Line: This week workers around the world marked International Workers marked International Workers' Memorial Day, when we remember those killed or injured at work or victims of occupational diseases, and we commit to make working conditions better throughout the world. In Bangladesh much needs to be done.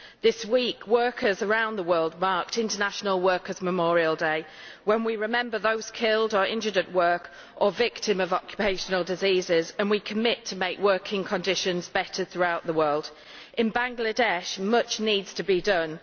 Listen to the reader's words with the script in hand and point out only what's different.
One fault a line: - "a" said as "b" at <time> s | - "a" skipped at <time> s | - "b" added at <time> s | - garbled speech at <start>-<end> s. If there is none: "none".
- "marked International Workers" skipped at 3.6 s